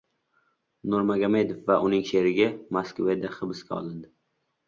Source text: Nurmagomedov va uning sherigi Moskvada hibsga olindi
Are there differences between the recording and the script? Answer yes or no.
no